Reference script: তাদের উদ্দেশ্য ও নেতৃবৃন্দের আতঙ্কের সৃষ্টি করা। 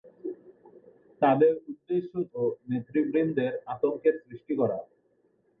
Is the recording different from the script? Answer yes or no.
no